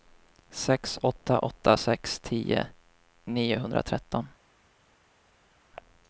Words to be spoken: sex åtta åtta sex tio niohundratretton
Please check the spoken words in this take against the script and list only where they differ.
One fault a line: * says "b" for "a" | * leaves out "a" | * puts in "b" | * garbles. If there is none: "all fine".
all fine